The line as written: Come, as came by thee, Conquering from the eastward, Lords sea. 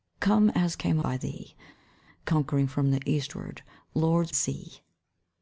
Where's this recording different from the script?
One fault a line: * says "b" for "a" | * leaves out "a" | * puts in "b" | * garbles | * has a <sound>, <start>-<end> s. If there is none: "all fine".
all fine